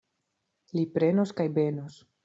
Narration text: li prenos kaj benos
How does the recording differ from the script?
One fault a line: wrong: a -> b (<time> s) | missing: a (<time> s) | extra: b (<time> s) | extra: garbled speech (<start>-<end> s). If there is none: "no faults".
no faults